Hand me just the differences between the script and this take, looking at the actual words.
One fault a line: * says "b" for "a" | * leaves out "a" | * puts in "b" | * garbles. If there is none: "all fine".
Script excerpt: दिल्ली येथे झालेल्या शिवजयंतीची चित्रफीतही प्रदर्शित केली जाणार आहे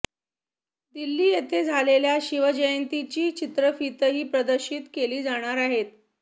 all fine